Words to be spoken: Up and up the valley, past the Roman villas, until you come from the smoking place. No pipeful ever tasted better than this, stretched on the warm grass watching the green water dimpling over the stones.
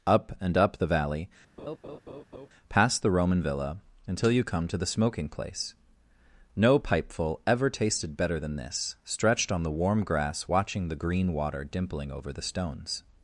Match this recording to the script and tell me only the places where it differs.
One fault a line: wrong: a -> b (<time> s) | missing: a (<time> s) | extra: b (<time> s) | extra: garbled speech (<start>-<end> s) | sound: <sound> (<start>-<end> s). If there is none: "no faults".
sound: laugh (1.6-2.5 s)
wrong: villas -> villa (3.4 s)
wrong: from -> to (4.7 s)